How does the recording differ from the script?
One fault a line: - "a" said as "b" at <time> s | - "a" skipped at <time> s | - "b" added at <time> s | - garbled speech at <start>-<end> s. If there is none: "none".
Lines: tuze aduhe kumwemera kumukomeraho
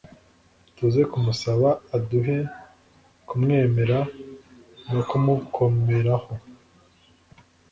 - "kumusaba" added at 1.1 s
- "no" added at 4.9 s